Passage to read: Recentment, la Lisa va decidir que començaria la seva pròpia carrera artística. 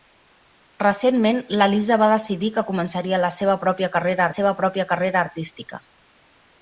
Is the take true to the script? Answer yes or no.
no